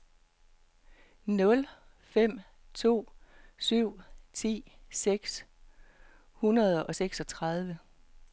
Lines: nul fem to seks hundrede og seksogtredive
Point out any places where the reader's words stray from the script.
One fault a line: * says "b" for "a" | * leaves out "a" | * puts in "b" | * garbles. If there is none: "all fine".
* puts in "syv ti"